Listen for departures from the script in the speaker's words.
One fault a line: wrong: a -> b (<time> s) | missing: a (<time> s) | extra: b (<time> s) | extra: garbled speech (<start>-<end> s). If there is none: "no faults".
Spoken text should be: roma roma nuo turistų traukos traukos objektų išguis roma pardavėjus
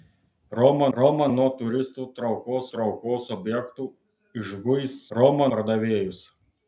no faults